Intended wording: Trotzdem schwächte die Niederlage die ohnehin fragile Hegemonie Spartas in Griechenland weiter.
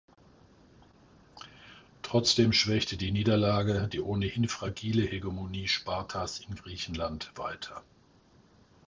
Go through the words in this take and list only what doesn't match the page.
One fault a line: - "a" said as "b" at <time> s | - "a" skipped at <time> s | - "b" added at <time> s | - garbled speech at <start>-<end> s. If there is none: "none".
none